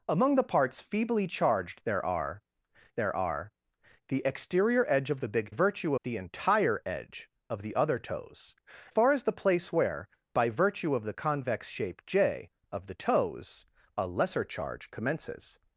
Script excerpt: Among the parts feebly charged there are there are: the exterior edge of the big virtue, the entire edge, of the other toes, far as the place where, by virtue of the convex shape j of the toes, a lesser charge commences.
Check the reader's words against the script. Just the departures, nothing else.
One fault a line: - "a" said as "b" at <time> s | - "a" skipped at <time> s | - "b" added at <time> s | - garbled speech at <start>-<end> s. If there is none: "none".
none